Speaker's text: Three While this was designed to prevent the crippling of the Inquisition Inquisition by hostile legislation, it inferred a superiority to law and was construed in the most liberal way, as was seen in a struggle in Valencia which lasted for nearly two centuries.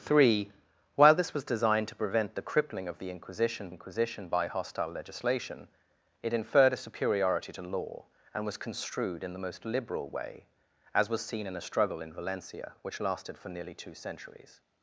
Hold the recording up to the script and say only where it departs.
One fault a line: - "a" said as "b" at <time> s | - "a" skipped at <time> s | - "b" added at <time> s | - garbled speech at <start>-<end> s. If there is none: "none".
none